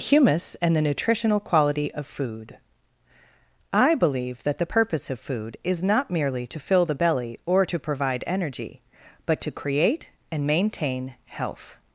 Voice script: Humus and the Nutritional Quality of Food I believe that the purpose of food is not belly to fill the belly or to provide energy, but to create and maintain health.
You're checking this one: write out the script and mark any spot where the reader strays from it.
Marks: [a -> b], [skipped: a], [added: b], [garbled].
Humus and the Nutritional Quality of Food I believe that the purpose of food is not [belly -> merely] to fill the belly or to provide energy, but to create and maintain health.